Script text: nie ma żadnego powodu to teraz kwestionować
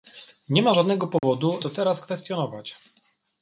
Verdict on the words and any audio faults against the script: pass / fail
fail